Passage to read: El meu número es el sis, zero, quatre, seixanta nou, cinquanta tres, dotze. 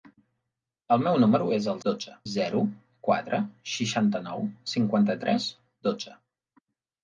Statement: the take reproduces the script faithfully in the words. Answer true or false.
false